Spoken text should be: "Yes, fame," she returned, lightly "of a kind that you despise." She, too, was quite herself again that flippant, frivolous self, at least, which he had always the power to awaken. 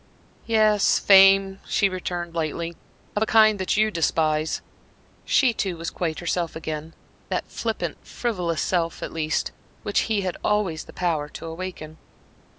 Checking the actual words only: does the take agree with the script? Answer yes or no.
yes